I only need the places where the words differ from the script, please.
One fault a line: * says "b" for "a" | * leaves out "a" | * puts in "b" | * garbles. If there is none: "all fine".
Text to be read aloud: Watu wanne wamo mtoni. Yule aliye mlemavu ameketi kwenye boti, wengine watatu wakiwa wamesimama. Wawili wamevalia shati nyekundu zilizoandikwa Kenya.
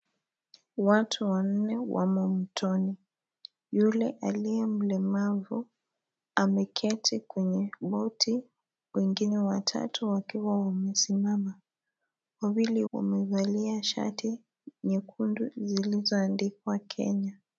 all fine